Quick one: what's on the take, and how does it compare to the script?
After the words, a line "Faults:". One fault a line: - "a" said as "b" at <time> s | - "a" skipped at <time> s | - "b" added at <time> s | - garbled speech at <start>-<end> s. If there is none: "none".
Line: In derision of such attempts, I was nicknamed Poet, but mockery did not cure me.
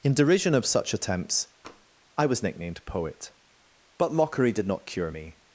In derision of such attempts, I was nicknamed Poet, but mockery did not cure me.
Faults:
none